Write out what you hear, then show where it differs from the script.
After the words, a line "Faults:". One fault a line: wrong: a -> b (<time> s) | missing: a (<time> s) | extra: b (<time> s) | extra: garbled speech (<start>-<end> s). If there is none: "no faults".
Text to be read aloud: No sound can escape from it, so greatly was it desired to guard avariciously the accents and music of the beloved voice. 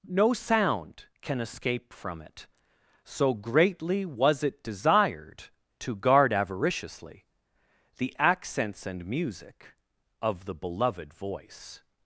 No sound can escape from it, so greatly was it desired to guard avariciously the accents and music of the beloved voice.
Faults:
no faults